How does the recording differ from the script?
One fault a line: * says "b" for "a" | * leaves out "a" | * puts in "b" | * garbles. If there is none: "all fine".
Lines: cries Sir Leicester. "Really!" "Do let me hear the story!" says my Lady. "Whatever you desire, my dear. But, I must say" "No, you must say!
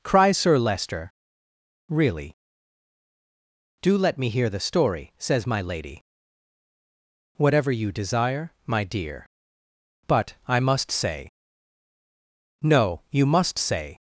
all fine